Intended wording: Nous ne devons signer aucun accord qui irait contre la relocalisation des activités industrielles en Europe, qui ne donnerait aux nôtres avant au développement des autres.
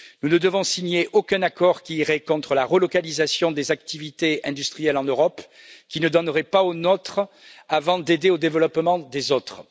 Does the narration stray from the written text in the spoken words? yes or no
yes